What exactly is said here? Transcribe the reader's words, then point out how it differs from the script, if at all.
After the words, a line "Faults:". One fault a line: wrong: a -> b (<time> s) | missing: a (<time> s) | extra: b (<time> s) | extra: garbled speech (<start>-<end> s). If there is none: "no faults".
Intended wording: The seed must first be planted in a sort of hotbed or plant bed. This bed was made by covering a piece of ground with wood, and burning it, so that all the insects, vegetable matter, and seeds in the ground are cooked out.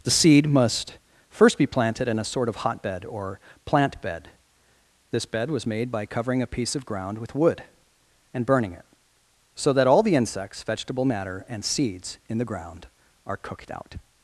The seed must first be planted in a sort of hotbed or plant bed. This bed was made by covering a piece of ground with wood, and burning it, so that all the insects, vegetable matter, and seeds in the ground are cooked out.
Faults:
no faults